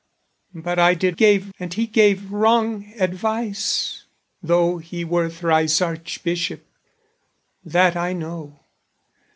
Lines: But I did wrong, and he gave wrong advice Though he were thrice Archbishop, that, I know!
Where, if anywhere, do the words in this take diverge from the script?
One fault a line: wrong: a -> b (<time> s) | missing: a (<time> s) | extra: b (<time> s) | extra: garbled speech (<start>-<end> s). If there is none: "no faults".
wrong: wrong -> gave (1.1 s)